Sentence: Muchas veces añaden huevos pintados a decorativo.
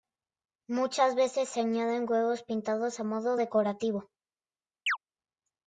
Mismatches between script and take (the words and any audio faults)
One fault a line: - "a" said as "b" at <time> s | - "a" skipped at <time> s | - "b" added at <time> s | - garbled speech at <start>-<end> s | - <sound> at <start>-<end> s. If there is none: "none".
- "se" added at 1.5 s
- "modo" added at 3.0 s
- chirp at 4.9-5.0 s